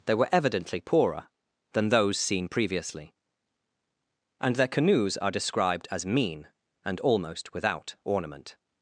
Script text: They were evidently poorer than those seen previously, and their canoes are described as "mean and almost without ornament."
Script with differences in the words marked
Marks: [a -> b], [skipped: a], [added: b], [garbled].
They were evidently poorer than those seen previously, and their canoes are described as "mean and almost without ornament."